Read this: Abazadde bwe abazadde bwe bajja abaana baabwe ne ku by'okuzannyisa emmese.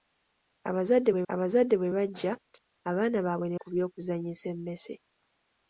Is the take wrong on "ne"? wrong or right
right